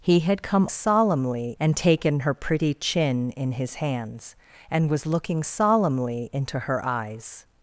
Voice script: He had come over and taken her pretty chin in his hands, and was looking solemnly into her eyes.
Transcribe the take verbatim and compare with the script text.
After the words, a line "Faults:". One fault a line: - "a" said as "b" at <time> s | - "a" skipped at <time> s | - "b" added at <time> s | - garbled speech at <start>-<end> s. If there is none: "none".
He had come solemnly and taken her pretty chin in his hands, and was looking solemnly into her eyes.
Faults:
- "over" said as "solemnly" at 0.7 s